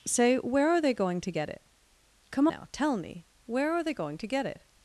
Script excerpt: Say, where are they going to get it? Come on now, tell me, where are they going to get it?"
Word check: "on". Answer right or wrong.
wrong